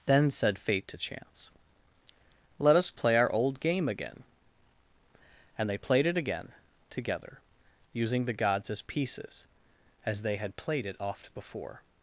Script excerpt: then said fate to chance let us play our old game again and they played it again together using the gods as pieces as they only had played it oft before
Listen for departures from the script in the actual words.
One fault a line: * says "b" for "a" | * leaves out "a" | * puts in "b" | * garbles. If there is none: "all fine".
* leaves out "only"